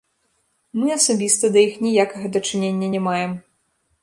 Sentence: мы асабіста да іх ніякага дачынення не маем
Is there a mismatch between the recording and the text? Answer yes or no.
no